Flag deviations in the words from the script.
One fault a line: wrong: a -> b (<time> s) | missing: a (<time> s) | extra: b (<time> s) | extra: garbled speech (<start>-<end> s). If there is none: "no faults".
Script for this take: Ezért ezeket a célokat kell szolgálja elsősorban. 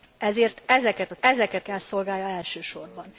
wrong: célokat -> ezeket (1.2 s)